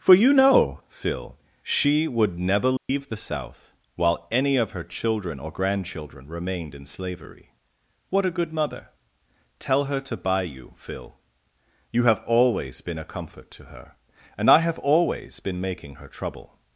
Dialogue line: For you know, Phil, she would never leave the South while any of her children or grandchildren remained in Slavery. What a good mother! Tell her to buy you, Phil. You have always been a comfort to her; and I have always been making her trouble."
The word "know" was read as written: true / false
true